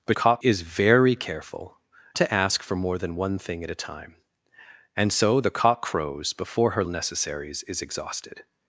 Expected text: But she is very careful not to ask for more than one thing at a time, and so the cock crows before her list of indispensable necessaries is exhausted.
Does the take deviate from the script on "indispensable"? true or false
true